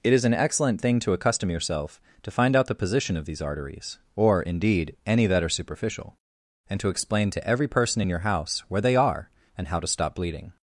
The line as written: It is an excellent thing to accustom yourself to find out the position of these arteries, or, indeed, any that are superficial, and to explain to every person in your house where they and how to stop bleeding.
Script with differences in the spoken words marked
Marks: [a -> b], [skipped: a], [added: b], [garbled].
It is an excellent thing to accustom yourself to find out the position of these arteries, or, indeed, any that are superficial, and to explain to every person in your house where they [added: are] and how to stop bleeding.